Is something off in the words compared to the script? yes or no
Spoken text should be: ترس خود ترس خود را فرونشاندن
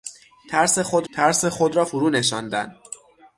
no